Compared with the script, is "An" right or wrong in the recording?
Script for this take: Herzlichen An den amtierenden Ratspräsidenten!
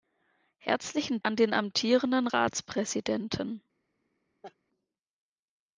right